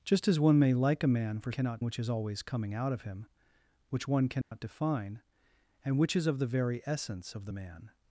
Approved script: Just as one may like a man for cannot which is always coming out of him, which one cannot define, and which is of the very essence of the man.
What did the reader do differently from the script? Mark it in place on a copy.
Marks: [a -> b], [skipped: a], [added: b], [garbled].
Just as one may like a man for cannot which is always coming out of him, which one cannot define, and which is of the very essence of the man.